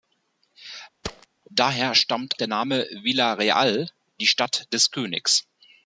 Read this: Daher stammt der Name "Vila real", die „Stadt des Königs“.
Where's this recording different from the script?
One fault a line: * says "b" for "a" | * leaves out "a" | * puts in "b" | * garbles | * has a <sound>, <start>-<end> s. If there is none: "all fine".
* has a thud, 1.0-1.3 s